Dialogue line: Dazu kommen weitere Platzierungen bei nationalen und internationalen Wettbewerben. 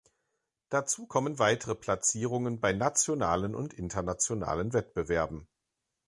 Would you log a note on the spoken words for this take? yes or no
no